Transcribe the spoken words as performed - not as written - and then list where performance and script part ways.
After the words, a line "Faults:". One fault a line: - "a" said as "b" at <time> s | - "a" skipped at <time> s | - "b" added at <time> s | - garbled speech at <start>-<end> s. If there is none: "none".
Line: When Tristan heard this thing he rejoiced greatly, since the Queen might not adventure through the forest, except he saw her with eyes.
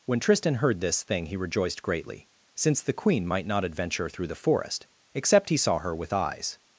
When Tristan heard this thing he rejoiced greatly, since the Queen might not adventure through the forest, except he saw her with eyes.
Faults:
none